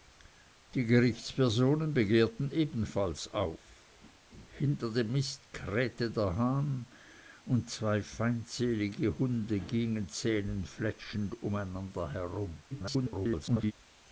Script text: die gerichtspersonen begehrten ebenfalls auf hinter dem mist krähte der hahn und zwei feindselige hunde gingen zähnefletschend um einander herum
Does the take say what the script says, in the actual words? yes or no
no